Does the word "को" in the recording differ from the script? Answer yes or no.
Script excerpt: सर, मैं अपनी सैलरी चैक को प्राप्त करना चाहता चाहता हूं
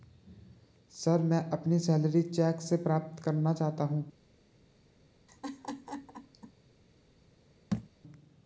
yes